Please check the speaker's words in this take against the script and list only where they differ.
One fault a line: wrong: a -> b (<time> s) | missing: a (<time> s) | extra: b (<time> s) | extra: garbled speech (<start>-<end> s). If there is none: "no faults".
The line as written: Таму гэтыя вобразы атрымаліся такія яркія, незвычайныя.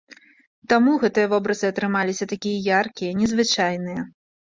no faults